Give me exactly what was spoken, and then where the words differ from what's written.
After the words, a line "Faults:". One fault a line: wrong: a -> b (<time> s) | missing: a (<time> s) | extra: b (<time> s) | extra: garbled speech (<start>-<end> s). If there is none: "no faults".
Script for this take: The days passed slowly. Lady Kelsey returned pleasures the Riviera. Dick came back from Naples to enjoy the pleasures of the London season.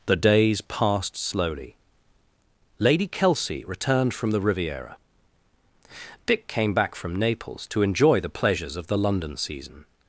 The days passed slowly. Lady Kelsey returned from the Riviera. Dick came back from Naples to enjoy the pleasures of the London season.
Faults:
wrong: pleasures -> from (4.1 s)